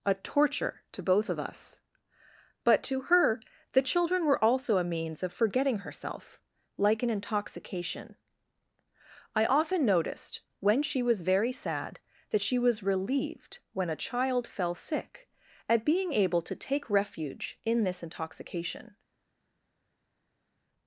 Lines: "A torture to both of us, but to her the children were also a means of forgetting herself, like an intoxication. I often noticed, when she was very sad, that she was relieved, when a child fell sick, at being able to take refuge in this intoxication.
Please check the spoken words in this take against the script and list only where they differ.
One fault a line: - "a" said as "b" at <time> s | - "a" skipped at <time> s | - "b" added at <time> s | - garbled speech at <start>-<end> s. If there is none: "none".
none